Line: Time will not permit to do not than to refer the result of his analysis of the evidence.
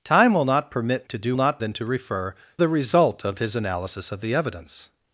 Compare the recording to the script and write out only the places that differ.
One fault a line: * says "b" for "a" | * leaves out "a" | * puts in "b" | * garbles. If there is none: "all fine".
all fine